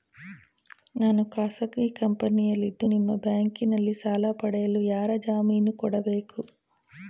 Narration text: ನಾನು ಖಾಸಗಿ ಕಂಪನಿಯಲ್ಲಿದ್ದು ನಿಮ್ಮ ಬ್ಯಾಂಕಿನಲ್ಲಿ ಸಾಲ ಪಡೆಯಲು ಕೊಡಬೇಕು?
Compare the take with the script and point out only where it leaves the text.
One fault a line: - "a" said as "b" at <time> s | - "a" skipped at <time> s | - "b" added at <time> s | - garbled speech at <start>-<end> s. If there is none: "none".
- "ಯಾರ ಜಾಮೀನು" added at 4.9 s